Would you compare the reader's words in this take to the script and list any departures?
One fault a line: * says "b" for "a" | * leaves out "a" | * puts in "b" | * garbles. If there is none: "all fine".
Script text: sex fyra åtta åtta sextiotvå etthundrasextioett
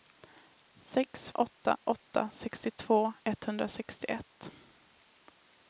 * leaves out "fyra"